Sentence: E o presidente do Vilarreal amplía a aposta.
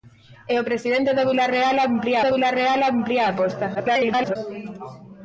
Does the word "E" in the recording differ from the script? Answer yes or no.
no